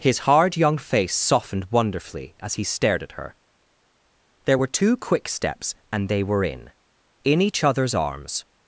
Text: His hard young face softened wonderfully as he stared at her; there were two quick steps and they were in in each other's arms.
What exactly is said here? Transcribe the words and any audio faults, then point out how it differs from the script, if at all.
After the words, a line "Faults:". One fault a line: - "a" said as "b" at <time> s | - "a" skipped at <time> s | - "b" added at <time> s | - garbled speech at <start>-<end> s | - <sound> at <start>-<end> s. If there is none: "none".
His hard young face softened wonderfully as he stared at her; there were two quick steps and they were in in each other's arms.
Faults:
none